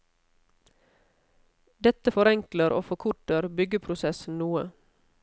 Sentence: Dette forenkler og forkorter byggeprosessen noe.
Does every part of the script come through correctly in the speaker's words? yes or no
yes